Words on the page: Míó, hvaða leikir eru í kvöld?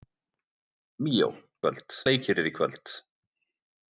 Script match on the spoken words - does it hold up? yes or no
no